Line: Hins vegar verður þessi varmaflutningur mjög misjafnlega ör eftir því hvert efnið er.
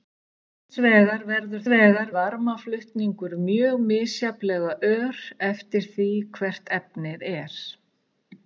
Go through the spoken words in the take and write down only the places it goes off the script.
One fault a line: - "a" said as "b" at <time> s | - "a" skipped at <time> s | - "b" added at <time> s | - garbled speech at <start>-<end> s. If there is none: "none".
- "þessi" said as "vegar" at 1.7 s